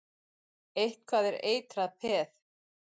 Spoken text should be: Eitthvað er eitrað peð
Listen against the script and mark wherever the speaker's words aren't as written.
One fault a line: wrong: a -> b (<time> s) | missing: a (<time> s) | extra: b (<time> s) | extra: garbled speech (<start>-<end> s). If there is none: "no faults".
no faults